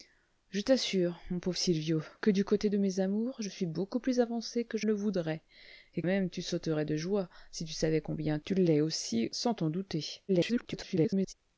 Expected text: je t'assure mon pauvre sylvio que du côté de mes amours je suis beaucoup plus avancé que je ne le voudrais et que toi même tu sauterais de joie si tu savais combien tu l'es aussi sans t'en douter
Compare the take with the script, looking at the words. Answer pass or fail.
fail